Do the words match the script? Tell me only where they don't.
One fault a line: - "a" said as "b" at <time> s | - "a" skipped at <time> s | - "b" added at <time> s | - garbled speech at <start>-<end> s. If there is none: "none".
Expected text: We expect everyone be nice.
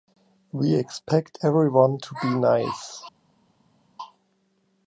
- "to" added at 2.0 s